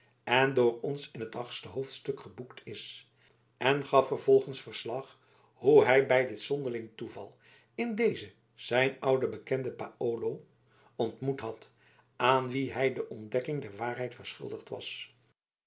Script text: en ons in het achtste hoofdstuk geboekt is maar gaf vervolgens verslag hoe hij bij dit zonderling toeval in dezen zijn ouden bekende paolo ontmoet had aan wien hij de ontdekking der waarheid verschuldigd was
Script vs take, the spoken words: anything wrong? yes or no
yes